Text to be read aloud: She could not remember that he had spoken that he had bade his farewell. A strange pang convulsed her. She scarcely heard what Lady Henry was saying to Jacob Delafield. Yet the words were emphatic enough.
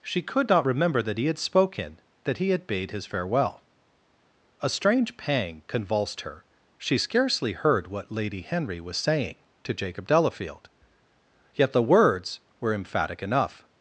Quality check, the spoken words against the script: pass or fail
pass